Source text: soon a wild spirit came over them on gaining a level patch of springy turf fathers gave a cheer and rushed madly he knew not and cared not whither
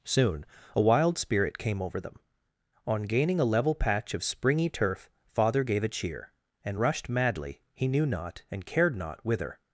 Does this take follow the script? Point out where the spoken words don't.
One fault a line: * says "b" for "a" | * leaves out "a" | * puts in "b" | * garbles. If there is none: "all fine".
* says "father" for "fathers"